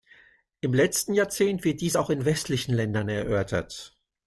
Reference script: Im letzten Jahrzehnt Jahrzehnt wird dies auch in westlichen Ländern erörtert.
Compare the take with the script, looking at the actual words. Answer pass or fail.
fail